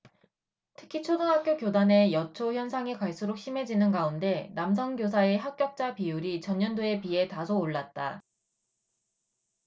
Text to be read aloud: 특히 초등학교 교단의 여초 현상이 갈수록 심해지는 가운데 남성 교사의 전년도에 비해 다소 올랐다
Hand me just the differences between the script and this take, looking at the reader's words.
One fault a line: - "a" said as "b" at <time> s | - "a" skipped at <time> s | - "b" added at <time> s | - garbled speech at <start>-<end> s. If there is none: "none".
- "합격자 비율이" added at 5.4 s